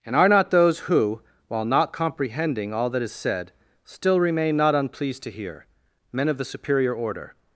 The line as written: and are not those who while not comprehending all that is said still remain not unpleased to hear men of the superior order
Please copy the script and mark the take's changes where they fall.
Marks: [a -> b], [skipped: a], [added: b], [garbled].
and are not those who while not comprehending all that is said still remain not unpleased to hear men of the superior order